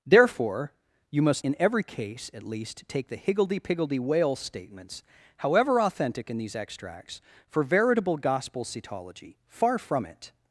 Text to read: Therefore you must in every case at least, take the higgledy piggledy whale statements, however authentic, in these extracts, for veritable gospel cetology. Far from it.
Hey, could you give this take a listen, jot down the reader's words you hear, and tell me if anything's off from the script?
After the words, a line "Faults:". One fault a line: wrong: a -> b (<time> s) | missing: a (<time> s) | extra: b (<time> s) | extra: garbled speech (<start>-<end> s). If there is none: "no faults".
Therefore you must in every case at least, take the higgledy piggledy whale statements, however authentic, in these extracts, for veritable gospel cetology. Far from it.
Faults:
no faults